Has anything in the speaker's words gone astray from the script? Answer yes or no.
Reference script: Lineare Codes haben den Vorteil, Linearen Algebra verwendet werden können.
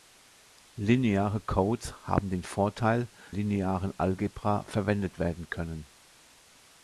no